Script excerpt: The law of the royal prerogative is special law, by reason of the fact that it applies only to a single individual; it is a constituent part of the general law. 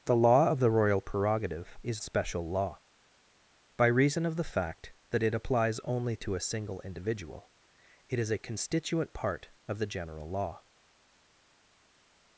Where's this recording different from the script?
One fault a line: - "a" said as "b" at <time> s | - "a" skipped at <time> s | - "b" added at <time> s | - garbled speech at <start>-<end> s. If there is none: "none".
none